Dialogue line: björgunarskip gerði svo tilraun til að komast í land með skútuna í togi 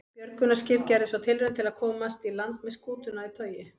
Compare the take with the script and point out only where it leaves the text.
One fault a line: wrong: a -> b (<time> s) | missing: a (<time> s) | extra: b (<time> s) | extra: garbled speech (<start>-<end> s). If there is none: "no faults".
no faults